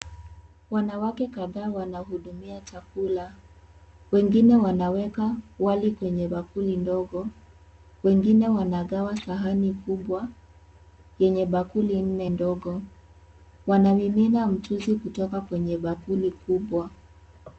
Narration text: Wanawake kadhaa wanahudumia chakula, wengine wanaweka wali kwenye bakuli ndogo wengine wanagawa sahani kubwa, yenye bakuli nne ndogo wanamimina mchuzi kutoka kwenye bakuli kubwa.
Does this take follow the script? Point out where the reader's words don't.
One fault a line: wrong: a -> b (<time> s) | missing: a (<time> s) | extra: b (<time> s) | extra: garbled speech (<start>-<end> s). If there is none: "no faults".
no faults